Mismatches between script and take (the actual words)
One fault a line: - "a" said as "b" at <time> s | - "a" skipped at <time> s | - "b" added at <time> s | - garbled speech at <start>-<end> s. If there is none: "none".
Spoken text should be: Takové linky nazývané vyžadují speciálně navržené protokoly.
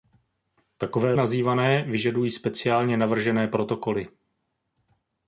- "linky" skipped at 1.1 s